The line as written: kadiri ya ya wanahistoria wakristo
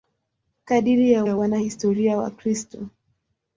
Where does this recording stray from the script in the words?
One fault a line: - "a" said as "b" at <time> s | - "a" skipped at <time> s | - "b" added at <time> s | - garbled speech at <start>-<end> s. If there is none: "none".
none